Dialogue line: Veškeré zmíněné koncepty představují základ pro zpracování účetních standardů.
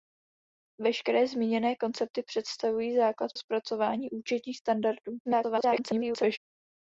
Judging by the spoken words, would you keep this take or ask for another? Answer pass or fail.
fail